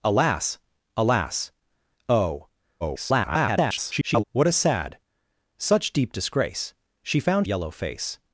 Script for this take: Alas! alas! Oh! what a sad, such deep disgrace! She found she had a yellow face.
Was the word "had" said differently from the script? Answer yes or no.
yes